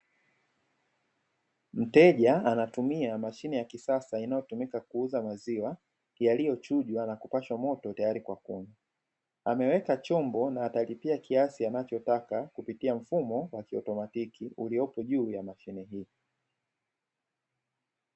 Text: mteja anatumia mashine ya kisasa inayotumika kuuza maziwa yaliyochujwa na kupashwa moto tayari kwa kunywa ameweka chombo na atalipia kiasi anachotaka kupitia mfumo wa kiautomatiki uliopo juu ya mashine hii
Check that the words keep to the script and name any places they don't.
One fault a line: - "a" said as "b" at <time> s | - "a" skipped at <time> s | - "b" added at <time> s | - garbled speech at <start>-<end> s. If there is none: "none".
none